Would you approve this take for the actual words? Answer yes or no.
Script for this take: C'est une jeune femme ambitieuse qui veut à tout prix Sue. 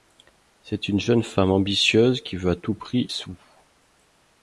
yes